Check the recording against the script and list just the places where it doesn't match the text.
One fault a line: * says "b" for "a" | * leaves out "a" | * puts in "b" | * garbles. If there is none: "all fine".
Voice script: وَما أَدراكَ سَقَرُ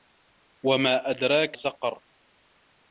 all fine